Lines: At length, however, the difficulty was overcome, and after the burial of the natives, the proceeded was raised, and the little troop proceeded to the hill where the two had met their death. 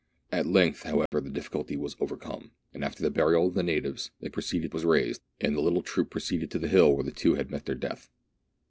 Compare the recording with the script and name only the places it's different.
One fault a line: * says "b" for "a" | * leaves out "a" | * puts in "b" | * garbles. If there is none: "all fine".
all fine